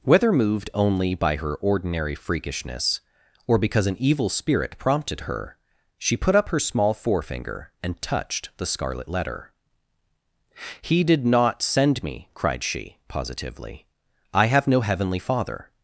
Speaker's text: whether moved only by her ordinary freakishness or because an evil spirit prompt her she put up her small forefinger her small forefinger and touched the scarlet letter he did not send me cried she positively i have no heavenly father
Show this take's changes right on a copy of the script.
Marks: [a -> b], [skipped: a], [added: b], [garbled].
whether moved only by her ordinary freakishness or because an evil spirit [prompt -> prompted] her she put up her small forefinger [skipped: her small forefinger] and touched the scarlet letter he did not send me cried she positively i have no heavenly father